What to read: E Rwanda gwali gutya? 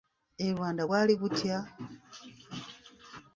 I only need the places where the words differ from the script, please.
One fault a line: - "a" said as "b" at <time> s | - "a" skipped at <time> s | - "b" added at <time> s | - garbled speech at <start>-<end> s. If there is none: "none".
none